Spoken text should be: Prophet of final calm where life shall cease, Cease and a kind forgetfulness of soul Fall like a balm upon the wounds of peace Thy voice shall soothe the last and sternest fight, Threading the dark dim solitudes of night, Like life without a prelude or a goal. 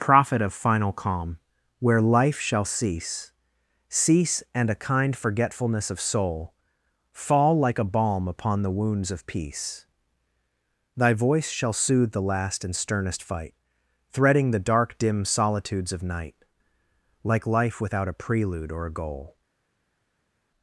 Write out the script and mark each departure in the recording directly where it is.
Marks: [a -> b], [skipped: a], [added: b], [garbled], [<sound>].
Prophet of final calm where life shall cease, Cease and a kind forgetfulness of soul Fall like a balm upon the wounds of peace Thy voice shall soothe the last and sternest fight, Threading the dark dim solitudes of night, Like life without a prelude or a goal.